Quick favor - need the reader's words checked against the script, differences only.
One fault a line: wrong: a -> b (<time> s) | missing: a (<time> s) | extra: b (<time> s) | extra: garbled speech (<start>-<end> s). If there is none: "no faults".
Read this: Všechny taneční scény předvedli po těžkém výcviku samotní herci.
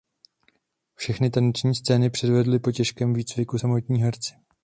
no faults